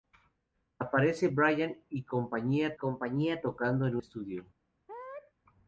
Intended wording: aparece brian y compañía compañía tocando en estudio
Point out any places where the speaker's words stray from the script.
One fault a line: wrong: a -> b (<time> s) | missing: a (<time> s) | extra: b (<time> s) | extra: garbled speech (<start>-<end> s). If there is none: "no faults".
no faults